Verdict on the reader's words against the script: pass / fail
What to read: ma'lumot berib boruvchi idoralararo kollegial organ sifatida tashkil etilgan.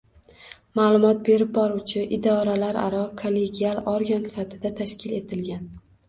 pass